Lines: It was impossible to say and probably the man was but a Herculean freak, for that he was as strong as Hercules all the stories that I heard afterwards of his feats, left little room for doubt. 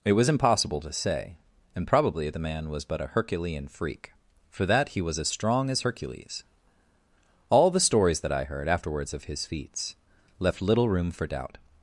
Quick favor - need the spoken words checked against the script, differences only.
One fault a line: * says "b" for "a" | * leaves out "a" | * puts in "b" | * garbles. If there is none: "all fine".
all fine